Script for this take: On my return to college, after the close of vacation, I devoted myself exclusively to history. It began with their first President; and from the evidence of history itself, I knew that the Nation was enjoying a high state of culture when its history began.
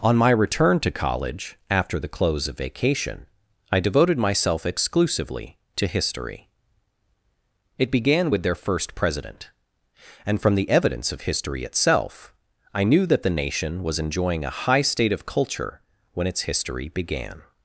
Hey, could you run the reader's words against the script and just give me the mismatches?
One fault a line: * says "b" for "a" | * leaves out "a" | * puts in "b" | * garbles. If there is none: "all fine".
all fine